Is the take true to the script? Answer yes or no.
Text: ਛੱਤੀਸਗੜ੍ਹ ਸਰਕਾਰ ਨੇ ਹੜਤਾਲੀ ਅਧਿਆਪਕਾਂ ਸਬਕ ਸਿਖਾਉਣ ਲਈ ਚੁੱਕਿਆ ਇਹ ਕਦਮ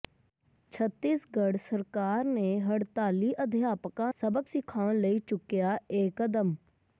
yes